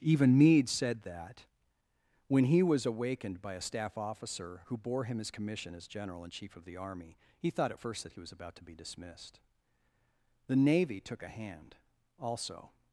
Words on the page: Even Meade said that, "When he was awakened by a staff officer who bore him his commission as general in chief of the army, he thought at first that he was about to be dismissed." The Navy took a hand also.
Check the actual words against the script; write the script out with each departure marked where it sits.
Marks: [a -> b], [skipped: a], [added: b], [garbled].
Even Meade said that, "When he was awakened by a staff officer who bore him his commission as general in chief of the army, he thought at first that he was about to be dismissed." The Navy took a hand also.